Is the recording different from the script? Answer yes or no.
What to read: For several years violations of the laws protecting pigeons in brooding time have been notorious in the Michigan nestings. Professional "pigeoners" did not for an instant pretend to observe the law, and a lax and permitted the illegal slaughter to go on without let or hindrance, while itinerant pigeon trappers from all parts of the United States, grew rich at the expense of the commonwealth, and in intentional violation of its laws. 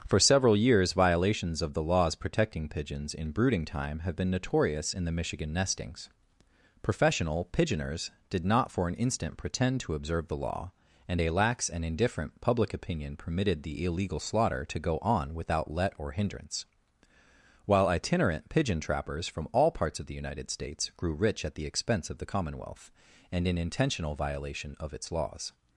yes